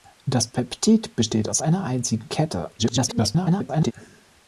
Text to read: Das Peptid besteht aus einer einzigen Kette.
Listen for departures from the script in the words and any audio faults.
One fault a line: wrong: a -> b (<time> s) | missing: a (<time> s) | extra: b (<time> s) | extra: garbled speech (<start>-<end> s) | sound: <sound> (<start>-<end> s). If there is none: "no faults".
extra: garbled speech (2.8-3.9 s)